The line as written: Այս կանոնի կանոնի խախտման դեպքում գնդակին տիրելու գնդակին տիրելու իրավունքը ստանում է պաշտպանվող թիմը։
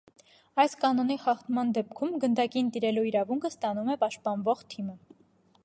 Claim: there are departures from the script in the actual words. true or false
true